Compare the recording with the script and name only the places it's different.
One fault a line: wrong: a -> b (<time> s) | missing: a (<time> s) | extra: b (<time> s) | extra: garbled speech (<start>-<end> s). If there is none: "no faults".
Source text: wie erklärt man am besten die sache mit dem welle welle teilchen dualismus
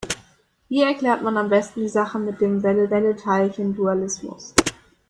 no faults